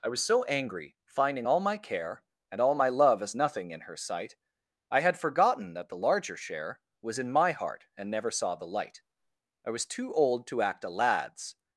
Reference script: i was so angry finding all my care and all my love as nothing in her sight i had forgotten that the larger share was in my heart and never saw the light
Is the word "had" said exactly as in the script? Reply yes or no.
yes